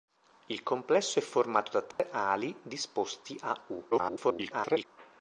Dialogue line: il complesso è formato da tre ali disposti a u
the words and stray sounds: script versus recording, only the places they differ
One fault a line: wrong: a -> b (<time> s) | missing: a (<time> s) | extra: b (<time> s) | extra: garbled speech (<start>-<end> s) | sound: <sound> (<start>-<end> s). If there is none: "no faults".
sound: dropout (1.9-2.0 s)
extra: garbled speech (3.9-4.8 s)